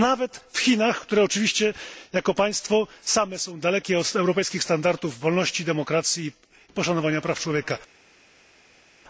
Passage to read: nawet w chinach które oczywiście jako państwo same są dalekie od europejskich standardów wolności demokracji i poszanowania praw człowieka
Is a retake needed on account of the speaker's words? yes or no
no